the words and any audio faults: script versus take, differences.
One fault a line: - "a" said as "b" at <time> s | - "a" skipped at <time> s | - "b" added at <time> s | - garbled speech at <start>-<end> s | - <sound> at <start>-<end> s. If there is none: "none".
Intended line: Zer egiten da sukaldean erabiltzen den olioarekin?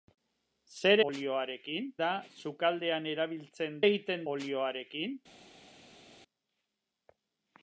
- "egiten" said as "olioarekin" at 1.1 s
- "den" said as "egiten" at 3.8 s